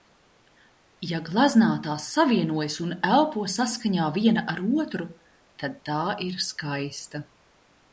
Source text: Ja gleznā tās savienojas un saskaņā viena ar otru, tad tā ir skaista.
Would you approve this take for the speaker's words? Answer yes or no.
no